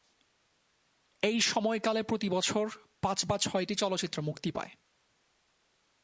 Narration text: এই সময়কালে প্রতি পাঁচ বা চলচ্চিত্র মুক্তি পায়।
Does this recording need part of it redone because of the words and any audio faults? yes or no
yes